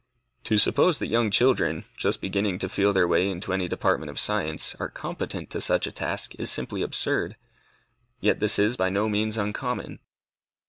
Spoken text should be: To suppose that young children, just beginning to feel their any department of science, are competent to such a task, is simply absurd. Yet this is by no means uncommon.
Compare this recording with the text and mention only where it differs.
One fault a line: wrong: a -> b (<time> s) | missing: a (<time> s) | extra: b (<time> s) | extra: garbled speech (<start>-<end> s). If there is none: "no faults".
extra: way into (3.1 s)